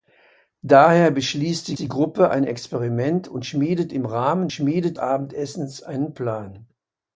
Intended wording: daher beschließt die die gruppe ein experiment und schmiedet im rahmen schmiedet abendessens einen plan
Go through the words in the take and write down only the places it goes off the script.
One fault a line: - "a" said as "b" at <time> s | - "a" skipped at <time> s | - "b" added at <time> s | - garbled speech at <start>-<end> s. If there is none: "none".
none